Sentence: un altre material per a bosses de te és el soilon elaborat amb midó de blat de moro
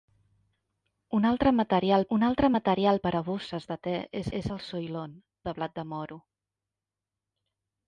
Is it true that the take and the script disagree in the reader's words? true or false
true